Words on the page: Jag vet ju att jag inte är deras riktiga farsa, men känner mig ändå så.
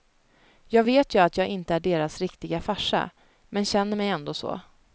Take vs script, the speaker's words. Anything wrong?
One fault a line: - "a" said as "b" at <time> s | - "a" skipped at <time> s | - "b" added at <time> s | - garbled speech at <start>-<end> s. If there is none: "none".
none